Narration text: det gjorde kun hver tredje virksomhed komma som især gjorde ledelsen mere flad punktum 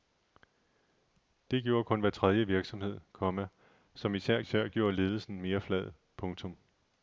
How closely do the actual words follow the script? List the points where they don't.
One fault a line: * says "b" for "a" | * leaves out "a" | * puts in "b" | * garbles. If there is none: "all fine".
* puts in "især"